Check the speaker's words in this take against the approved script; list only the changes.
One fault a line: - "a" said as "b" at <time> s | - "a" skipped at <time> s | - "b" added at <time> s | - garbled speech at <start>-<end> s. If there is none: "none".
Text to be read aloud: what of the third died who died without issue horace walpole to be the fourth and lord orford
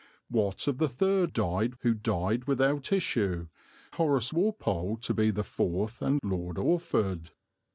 none